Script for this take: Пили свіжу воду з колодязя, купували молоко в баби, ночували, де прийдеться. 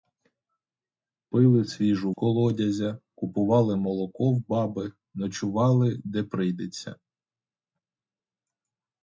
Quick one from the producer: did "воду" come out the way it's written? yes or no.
no